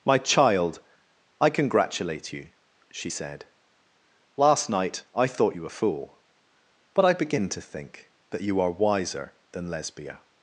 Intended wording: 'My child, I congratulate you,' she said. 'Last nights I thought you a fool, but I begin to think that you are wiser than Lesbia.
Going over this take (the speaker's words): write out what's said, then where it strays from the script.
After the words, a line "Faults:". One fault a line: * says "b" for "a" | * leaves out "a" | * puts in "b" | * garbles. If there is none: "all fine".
'My child, I congratulate you,' she said. 'Last night I thought you a fool, but I begin to think that you are wiser than Lesbia.
Faults:
* says "night" for "nights"